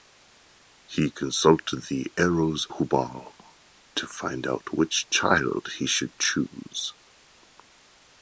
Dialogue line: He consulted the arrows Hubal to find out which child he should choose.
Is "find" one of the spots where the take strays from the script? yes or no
no